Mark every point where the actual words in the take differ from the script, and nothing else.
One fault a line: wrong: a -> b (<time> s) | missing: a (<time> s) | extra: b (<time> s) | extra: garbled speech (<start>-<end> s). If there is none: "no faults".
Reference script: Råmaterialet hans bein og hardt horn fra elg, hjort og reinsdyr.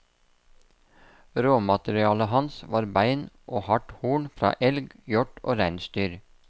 extra: var (2.8 s)